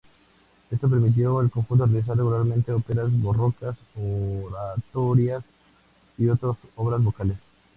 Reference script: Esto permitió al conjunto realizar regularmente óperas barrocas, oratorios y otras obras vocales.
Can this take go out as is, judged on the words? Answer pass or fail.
pass